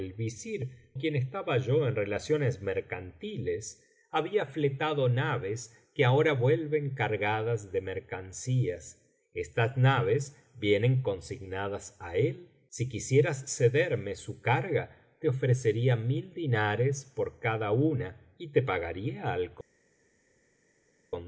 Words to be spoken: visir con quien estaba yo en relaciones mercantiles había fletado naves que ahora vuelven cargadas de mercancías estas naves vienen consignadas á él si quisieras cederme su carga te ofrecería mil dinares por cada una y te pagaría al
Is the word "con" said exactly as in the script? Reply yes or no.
no